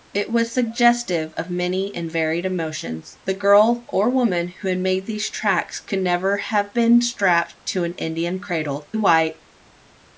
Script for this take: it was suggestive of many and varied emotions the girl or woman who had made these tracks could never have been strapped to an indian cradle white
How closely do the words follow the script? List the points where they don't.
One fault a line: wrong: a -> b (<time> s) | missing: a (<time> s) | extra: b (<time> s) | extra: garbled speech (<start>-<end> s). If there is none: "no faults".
no faults